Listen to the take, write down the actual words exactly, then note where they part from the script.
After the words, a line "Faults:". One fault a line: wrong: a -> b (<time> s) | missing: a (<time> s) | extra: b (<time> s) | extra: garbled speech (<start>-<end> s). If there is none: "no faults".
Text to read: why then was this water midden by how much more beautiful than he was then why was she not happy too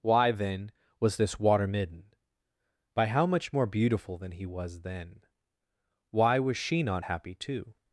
why then was this water midden by how much more beautiful than he was then why was she not happy too
Faults:
no faults